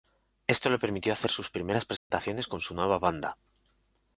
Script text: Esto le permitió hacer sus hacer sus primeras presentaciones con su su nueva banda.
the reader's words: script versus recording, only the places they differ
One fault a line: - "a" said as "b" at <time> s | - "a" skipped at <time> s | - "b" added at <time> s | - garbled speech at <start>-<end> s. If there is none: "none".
- "hacer sus" skipped at 1.5 s
- "su" skipped at 2.7 s